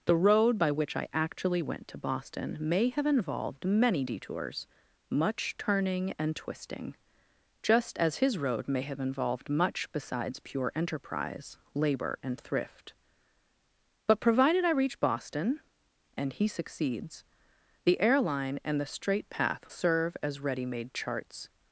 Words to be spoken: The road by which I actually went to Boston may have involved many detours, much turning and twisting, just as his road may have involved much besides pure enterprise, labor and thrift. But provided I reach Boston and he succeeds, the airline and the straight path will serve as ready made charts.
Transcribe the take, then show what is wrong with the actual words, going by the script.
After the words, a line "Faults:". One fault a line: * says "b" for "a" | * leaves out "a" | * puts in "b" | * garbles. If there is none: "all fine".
The road by which I actually went to Boston may have involved many detours, much turning and twisting, just as his road may have involved much besides pure enterprise, labor and thrift. But provided I reach Boston and he succeeds, the airline and the straight path serve as ready made charts.
Faults:
* leaves out "will"